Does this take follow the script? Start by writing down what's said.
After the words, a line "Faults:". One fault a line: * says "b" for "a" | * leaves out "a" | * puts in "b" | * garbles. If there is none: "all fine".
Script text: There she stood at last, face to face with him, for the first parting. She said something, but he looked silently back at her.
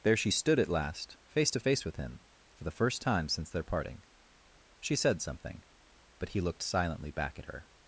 There she stood at last, face to face with him, for the first time since their parting. She said something, but he looked silently back at her.
Faults:
* puts in "time since their"